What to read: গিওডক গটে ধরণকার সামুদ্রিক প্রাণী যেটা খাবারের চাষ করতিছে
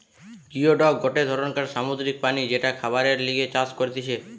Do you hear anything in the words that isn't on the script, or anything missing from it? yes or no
yes